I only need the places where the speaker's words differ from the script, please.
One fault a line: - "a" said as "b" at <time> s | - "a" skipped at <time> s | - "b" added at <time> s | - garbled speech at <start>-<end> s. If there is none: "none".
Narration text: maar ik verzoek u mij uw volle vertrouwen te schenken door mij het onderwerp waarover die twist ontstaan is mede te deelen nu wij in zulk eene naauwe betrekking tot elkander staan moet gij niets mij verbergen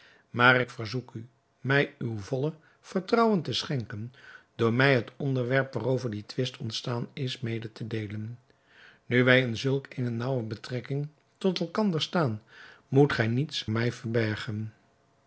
none